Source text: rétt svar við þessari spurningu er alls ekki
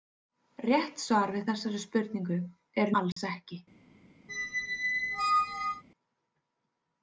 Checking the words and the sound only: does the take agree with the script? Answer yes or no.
no